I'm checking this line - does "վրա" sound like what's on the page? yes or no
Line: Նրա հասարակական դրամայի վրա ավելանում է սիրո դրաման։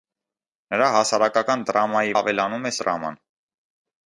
no